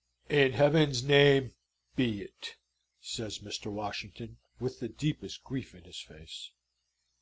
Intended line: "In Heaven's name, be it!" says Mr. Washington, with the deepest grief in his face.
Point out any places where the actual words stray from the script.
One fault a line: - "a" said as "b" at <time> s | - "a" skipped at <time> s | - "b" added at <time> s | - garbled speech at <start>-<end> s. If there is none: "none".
none